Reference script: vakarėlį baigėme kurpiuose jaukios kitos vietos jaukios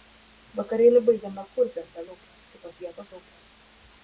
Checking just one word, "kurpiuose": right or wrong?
right